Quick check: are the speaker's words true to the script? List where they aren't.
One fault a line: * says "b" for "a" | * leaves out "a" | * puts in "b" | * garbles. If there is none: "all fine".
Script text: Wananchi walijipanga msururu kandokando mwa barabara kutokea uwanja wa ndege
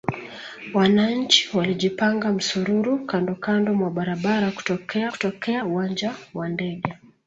* puts in "kutokea"